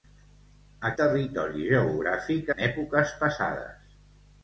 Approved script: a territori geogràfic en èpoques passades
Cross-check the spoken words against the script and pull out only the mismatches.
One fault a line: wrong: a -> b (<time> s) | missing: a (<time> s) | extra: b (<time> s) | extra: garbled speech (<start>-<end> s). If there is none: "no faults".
no faults